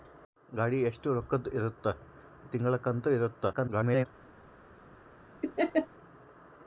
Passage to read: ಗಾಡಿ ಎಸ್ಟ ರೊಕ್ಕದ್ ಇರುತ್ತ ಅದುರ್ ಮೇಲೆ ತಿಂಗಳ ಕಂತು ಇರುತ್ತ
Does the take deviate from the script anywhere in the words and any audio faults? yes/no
yes